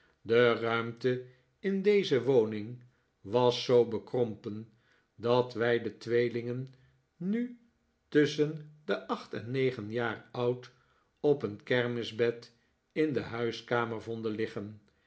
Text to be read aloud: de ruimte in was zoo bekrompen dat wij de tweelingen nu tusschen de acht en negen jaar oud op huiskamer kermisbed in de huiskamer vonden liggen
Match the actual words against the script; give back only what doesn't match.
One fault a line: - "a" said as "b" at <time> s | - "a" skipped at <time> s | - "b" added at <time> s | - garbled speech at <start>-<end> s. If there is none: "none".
- "deze woning" added at 1.8 s
- "huiskamer" said as "een" at 11.4 s